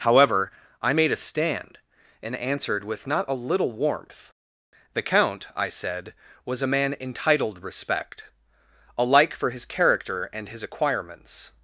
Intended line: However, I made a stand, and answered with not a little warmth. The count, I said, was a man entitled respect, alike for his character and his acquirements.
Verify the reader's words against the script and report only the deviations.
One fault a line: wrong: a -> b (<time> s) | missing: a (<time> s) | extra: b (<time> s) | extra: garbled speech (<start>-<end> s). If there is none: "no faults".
no faults